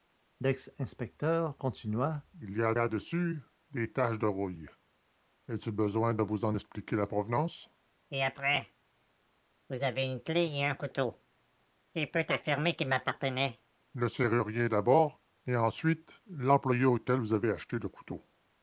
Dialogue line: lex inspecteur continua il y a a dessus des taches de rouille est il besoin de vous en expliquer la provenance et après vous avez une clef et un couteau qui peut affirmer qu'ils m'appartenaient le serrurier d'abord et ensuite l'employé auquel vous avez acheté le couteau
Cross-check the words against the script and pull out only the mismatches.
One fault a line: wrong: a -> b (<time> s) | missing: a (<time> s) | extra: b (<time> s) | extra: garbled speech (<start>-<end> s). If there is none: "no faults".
no faults